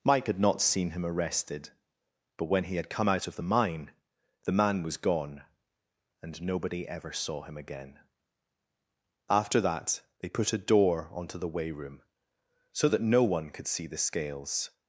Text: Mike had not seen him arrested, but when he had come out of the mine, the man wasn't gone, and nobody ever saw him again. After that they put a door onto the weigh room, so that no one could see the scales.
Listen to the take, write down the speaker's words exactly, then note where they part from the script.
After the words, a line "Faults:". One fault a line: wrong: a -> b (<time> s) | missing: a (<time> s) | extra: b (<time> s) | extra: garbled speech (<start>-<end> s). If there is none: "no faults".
Mike had not seen him arrested, but when he had come out of the mine, the man was gone, and nobody ever saw him again. After that they put a door onto the weigh room, so that no one could see the scales.
Faults:
wrong: wasn't -> was (4.8 s)